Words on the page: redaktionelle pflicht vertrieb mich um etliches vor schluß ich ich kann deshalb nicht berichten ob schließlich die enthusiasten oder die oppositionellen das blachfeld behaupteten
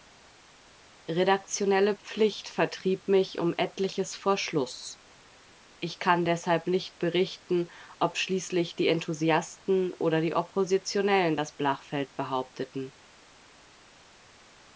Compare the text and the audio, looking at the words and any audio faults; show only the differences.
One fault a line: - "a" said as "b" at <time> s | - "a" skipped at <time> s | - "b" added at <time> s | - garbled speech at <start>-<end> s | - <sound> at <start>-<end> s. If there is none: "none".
- "ich" skipped at 6.0 s